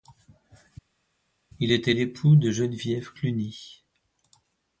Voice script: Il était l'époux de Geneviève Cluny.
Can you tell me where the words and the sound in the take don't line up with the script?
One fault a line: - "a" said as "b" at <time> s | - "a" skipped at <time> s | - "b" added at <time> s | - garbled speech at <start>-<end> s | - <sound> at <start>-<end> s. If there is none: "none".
none